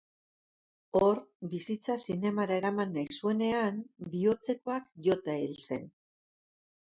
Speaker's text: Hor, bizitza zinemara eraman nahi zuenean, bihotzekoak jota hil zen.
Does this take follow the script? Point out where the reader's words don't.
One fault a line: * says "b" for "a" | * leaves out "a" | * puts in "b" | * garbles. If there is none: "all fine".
all fine